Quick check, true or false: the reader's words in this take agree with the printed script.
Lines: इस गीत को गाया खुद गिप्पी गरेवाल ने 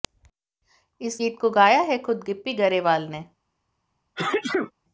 false